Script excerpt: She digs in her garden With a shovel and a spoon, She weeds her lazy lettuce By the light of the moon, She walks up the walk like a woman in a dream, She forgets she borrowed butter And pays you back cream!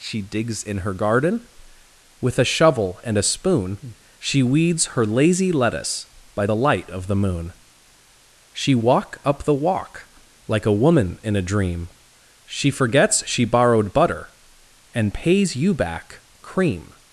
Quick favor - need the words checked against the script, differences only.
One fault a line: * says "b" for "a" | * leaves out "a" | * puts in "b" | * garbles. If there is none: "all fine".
* says "walk" for "walks"